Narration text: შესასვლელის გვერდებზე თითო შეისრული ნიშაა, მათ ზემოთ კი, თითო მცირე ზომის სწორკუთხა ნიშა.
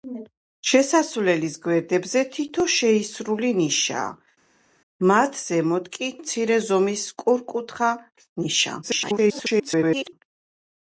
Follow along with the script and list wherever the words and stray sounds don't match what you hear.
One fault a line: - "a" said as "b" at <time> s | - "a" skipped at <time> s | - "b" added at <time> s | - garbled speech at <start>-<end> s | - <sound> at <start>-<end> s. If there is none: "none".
- "თითო" skipped at 6.1 s
- garbled speech at 8.8-10.1 s